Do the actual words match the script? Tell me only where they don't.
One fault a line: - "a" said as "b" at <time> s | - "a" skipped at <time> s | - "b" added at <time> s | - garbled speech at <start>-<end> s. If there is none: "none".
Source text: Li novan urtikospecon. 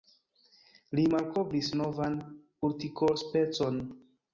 - "malkovris" added at 1.2 s